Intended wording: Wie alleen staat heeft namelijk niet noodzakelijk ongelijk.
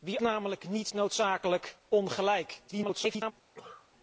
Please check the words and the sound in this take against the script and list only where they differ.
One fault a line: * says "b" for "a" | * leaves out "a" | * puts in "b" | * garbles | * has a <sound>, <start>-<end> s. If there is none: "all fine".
* leaves out "alleen staat heeft"
* garbles
* has a cough, 3.5-3.9 s